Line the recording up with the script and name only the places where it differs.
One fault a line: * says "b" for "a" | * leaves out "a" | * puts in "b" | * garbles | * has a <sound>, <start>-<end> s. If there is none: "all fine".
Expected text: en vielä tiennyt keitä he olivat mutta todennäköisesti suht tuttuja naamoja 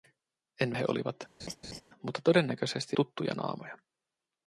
* leaves out "vielä tiennyt keitä"
* has a laugh, 1.4-1.8 s
* leaves out "suht"